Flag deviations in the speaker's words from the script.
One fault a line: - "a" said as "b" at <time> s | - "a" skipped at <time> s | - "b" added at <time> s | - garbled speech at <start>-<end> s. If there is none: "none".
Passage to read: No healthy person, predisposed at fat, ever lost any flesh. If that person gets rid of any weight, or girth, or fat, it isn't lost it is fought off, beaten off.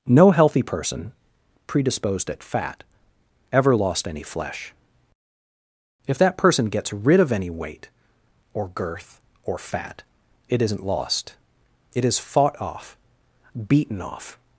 none